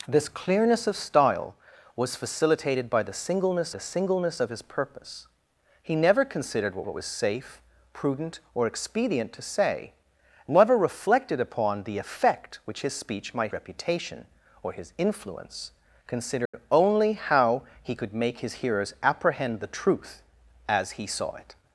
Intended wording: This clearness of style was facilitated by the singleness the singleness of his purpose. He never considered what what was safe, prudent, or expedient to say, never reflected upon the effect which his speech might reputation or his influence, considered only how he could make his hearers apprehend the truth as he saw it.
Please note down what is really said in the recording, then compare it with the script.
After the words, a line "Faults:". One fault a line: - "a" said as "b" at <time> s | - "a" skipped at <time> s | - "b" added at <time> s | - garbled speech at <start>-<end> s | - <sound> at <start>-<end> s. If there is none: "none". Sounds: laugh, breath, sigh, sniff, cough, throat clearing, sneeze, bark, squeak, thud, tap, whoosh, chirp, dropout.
This clearness of style was facilitated by the singleness the singleness of his purpose. He never considered what what was safe, prudent, or expedient to say, never reflected upon the effect which his speech might reputation or his influence, considered only how he could make his hearers apprehend the truth as he saw it.
Faults:
- dropout at 16.5-16.5 s